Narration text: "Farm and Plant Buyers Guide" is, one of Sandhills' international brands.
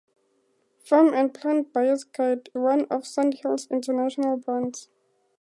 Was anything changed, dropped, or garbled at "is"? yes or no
yes